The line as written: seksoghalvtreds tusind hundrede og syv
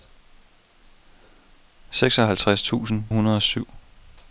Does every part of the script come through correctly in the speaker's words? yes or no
yes